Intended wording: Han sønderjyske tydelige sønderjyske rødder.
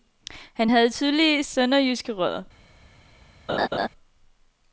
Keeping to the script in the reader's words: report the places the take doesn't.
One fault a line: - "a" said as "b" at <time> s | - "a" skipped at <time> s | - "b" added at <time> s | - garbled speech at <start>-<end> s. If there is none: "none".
- "sønderjyske" said as "havde" at 0.7 s